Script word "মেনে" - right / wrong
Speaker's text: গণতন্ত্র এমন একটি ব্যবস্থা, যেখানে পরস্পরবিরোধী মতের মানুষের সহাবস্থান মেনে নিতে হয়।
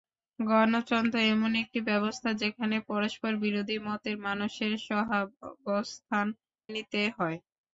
wrong